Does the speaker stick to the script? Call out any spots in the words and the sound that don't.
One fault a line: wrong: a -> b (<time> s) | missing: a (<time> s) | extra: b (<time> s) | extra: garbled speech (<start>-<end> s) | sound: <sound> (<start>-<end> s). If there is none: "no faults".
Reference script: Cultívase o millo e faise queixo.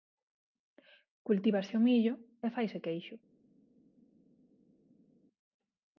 no faults